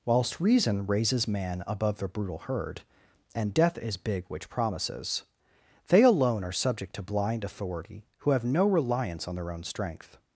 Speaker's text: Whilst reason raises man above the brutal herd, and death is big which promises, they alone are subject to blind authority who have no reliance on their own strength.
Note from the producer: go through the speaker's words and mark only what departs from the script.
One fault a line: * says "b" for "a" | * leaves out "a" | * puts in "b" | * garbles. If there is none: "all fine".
all fine